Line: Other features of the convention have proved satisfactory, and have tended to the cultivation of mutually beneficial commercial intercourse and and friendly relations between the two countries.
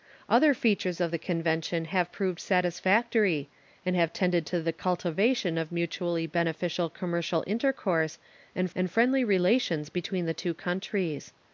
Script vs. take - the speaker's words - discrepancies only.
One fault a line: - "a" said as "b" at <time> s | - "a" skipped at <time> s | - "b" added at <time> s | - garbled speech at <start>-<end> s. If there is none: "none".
none